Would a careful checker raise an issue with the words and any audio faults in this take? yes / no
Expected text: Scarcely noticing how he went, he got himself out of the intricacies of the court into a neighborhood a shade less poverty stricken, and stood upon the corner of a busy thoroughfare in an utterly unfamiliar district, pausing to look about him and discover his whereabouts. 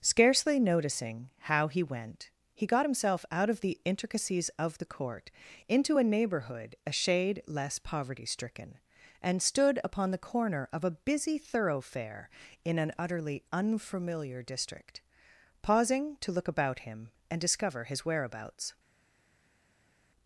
no